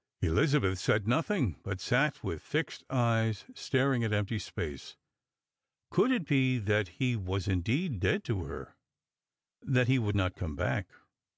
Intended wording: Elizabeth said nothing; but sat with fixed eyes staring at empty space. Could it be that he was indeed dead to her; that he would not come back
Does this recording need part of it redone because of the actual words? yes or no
no